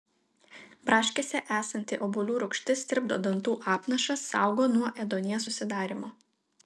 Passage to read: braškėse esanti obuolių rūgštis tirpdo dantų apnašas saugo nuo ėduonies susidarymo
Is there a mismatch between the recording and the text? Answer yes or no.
no